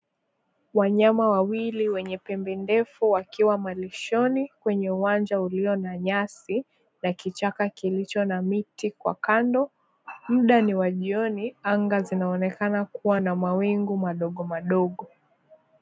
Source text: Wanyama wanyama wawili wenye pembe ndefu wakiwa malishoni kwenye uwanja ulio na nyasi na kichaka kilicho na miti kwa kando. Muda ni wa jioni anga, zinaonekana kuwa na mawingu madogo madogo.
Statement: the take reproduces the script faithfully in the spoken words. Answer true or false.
false